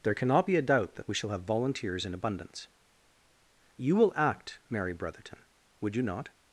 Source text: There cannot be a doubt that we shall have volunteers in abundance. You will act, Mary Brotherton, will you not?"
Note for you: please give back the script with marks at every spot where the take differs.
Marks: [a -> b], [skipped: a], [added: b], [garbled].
There cannot be a doubt that we shall have volunteers in abundance. You will act, Mary Brotherton, [will -> would] you not?"